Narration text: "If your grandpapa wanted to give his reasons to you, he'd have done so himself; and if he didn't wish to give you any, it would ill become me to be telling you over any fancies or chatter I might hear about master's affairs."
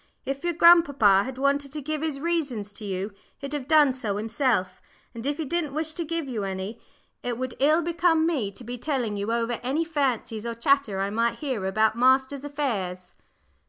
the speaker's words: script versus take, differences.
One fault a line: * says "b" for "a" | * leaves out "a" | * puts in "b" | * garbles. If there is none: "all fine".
* puts in "had"